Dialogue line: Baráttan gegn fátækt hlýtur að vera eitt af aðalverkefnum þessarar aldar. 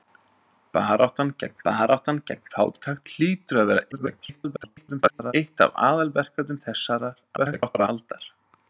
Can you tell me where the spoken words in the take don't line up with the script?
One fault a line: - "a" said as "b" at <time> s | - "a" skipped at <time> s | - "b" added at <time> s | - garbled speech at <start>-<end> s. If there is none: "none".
- "baráttan gegn" added at 1.7 s
- garbled speech at 3.9-5.3 s
- garbled speech at 7.4-7.9 s